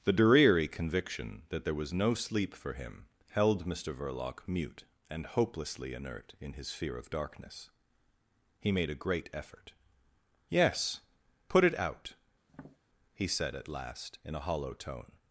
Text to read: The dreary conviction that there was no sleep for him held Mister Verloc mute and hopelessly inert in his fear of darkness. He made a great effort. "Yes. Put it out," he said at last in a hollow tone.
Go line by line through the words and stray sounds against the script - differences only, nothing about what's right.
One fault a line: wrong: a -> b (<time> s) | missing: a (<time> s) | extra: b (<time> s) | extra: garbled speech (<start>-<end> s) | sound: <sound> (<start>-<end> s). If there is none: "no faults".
sound: tap (12.5-12.8 s)